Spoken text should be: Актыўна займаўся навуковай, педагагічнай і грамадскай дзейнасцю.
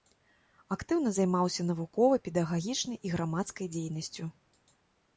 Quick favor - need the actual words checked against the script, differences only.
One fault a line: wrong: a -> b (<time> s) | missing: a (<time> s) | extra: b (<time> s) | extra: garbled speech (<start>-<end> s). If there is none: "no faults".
no faults